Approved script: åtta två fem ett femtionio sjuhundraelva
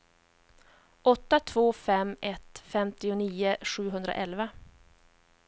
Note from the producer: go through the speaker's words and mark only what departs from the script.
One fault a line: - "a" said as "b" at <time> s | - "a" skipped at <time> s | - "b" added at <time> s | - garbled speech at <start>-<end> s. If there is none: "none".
none